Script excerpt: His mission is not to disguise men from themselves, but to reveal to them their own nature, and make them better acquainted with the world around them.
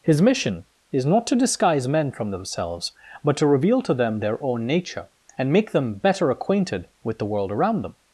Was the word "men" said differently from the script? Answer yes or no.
no